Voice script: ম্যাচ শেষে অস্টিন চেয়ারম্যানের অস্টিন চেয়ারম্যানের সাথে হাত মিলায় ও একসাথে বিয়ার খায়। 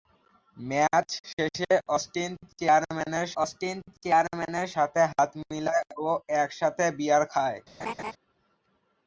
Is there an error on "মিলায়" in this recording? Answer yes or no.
no